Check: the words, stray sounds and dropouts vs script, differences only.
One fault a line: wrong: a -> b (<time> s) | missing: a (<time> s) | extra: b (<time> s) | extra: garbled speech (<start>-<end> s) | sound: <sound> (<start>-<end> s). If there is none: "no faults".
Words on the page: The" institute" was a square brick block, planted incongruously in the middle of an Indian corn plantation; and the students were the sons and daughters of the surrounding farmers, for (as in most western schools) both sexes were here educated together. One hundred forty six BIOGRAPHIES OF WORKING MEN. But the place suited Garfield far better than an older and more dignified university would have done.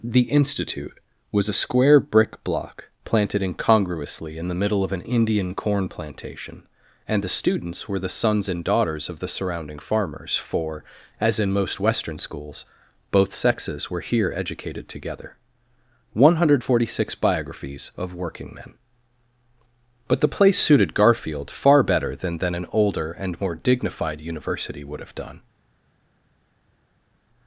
extra: than (22.4 s)